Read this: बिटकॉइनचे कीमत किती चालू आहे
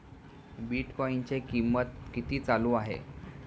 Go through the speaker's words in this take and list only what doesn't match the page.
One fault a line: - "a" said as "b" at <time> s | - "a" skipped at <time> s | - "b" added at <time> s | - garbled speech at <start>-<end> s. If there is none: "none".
none